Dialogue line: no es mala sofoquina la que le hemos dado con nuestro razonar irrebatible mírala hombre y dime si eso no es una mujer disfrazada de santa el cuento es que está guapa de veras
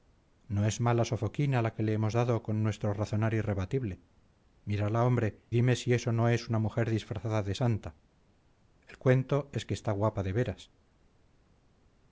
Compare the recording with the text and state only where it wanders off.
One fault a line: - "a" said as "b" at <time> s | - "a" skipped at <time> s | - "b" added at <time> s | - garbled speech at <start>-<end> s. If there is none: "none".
- "y" skipped at 5.5 s